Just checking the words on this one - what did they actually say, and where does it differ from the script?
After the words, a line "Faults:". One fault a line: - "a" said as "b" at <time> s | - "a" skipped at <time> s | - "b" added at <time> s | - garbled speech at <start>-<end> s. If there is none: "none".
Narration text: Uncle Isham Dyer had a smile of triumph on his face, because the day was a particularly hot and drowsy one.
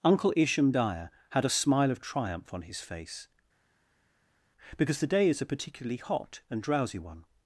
Uncle Isham Dyer had a smile of triumph on his face, because the day is a particularly hot and drowsy one.
Faults:
- "was" said as "is" at 5.3 s